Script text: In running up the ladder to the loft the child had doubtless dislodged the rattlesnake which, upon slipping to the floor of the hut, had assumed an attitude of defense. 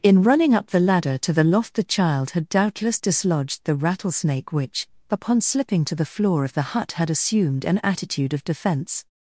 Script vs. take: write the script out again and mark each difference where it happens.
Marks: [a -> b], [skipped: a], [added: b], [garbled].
In running up the ladder to the loft the child had doubtless dislodged the rattlesnake which, upon slipping to the floor of the hut, had assumed an attitude of defense.